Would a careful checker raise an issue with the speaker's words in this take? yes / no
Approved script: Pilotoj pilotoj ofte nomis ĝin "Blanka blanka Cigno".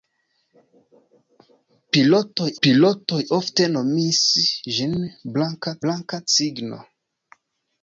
no